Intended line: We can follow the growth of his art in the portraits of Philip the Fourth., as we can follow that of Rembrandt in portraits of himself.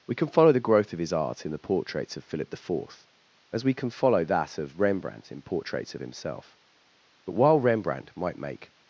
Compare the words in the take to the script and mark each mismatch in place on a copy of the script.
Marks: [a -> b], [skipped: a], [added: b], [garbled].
We can follow the growth of his art in the portraits of Philip the Fourth., as we can follow that of Rembrandt in portraits of himself. [added: But while Rembrandt might make]